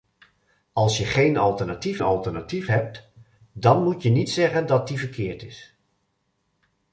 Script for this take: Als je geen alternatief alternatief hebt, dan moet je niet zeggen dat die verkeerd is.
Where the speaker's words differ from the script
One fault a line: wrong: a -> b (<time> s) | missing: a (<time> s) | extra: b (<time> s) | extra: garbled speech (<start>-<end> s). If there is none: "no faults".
no faults